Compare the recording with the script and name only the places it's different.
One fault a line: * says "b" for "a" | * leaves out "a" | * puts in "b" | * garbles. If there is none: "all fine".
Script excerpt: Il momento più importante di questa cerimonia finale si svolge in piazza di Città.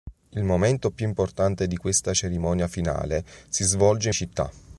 * leaves out "in piazza di"